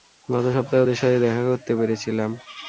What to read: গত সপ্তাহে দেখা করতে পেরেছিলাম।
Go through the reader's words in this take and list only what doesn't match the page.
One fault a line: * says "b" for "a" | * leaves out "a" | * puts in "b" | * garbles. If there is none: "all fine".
* puts in "ওদের সাথে"